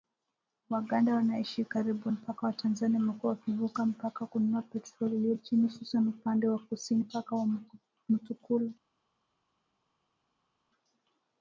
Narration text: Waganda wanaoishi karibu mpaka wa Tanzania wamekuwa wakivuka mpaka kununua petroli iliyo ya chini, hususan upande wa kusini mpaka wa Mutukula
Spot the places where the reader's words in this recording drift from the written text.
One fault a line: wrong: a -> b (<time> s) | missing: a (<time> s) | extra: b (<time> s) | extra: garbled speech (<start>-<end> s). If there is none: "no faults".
no faults